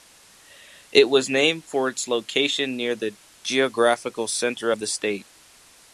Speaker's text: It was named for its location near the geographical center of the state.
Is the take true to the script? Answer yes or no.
yes